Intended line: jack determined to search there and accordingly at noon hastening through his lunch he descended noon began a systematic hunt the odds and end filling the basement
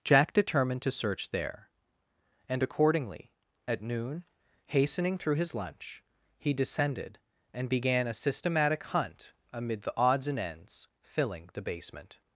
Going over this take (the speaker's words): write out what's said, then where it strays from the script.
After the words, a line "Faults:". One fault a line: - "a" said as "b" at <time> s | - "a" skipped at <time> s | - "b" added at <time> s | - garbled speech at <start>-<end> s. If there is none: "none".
jack determined to search there and accordingly at noon hastening through his lunch he descended and began a systematic hunt amid the odds and ends filling the basement
Faults:
- "noon" said as "and" at 7.5 s
- "amid" added at 9.5 s
- "end" said as "ends" at 10.4 s